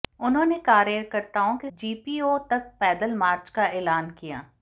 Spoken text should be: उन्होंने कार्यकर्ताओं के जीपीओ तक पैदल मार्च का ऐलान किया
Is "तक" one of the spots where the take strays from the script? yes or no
no